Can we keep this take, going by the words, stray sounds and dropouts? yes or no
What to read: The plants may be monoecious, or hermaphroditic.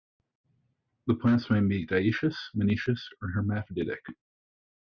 no